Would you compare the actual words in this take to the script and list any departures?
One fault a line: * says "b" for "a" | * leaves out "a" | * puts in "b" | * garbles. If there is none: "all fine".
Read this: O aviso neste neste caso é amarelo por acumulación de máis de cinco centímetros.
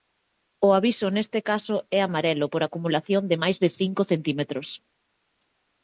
* leaves out "neste"